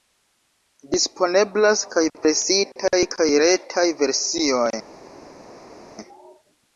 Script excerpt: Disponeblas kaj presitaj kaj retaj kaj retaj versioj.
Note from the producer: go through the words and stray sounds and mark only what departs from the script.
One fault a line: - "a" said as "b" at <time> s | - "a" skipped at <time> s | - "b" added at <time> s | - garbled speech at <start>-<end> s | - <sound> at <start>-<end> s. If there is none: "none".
- "kaj retaj" skipped at 3.9 s